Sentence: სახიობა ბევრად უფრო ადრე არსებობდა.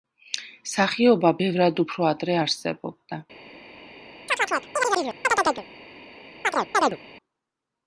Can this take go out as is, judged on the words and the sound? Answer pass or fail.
fail